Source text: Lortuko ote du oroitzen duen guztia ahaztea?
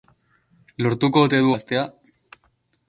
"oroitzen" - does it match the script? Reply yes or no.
no